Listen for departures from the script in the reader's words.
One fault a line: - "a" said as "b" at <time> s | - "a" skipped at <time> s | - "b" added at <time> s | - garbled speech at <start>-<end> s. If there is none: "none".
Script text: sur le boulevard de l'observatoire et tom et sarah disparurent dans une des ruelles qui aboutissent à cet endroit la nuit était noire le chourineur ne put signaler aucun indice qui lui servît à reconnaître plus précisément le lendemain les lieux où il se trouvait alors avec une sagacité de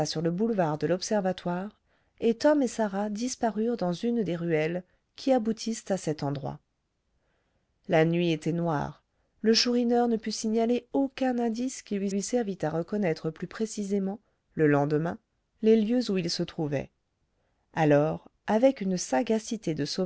- "lui" added at 12.1 s